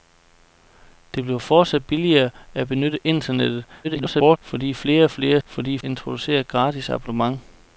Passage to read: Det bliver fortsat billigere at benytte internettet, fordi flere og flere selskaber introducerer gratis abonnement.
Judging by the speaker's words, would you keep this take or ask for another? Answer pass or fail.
fail